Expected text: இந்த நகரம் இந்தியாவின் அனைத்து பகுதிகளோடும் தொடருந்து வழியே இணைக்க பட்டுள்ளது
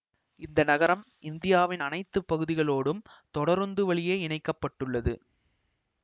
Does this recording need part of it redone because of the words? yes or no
no